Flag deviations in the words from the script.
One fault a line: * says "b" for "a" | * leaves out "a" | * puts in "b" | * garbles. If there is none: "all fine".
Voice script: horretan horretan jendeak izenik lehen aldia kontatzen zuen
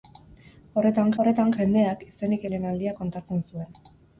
all fine